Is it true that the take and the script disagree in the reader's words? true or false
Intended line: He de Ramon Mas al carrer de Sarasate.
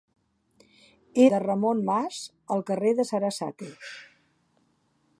false